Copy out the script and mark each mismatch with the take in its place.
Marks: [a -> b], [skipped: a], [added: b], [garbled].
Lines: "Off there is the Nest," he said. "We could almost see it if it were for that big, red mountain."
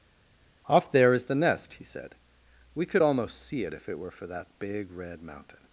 "Off there is the Nest," he said. "We could almost see it if it were for that big, red mountain."